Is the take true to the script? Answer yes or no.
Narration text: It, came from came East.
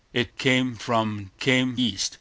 yes